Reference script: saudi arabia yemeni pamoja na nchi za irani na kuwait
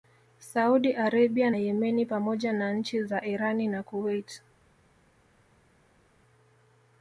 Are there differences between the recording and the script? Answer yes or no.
no